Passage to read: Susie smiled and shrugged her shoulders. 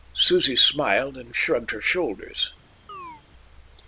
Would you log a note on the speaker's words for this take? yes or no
no